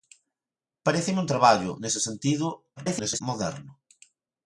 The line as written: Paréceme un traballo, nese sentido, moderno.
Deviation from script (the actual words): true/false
true